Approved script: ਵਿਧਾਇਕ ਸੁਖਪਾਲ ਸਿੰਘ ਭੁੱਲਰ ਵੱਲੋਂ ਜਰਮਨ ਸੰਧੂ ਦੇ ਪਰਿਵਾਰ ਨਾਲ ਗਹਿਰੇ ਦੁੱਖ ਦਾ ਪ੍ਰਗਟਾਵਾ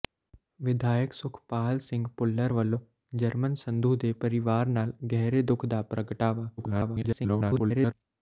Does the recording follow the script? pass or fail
fail